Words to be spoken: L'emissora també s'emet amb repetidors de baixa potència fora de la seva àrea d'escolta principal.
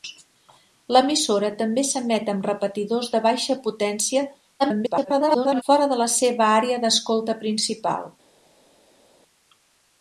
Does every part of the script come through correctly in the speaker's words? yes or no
no